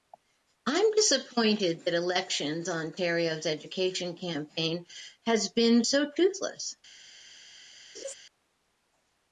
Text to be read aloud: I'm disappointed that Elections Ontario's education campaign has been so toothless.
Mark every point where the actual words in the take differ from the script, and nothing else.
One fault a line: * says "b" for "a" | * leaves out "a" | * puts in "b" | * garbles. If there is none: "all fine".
all fine